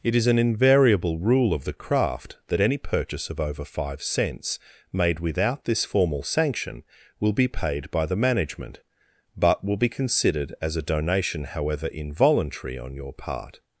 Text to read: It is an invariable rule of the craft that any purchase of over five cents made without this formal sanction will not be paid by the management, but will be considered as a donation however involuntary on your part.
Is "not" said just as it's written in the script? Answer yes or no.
no